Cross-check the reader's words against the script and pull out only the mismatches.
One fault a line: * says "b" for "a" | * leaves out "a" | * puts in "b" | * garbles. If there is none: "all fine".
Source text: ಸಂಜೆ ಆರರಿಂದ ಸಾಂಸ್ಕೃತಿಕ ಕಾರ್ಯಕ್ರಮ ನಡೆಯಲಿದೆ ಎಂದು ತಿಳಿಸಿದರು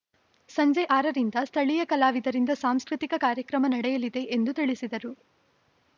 * puts in "ಸ್ಥಳೀಯ ಕಲಾವಿದರಿಂದ"